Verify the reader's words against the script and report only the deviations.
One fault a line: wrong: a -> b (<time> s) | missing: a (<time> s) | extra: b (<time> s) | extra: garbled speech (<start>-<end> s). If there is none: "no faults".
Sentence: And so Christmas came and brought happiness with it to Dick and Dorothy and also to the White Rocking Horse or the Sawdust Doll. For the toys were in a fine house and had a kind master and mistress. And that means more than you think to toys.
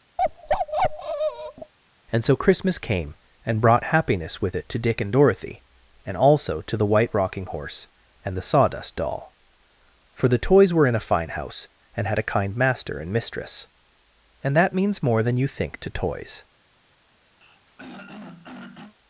wrong: or -> and (8.2 s)